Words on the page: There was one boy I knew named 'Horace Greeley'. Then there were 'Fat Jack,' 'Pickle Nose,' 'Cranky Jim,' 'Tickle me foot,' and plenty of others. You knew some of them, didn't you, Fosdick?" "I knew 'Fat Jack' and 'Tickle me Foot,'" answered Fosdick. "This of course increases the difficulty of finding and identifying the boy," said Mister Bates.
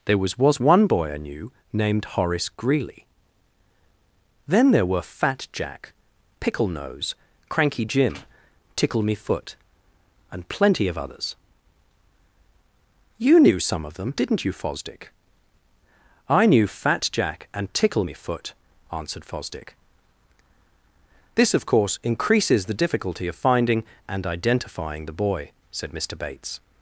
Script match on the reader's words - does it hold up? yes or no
no